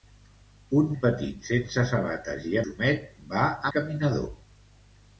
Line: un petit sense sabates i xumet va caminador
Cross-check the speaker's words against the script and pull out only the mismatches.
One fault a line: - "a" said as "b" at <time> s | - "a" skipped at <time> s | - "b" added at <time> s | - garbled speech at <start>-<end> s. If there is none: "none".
none